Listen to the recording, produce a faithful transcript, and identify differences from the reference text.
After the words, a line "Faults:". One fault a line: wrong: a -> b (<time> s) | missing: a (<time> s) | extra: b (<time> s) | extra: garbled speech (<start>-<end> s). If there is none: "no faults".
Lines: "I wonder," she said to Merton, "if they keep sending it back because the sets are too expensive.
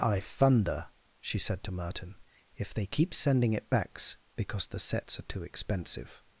"I thunder," she said to Merton, "if they keep sending it backs because the sets are too expensive.
Faults:
wrong: wonder -> thunder (0.2 s)
wrong: back -> backs (3.7 s)